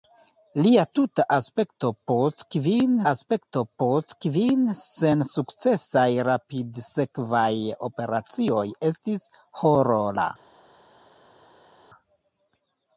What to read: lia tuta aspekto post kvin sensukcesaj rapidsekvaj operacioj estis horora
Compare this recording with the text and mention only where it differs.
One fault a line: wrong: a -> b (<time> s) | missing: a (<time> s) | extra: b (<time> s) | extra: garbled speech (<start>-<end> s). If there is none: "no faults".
extra: aspekto post kvin (3.1 s)